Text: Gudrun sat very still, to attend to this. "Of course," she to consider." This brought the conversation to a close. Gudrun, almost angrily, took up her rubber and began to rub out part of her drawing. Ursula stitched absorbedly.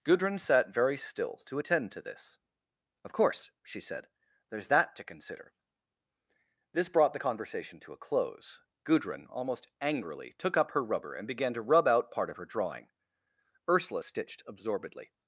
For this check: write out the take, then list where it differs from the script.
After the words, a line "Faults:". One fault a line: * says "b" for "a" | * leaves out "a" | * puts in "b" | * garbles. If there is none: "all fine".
Gudrun sat very still, to attend to this. "Of course," she said, "there's that to consider." This brought the conversation to a close. Gudrun, almost angrily, took up her rubber and began to rub out part of her drawing. Ursula stitched absorbedly.
Faults:
* puts in "said there's that"